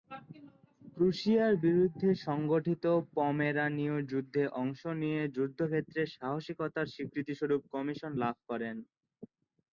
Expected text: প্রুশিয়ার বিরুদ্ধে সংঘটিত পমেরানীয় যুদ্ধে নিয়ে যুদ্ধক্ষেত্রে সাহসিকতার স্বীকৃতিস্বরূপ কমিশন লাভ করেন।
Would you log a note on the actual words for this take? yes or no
yes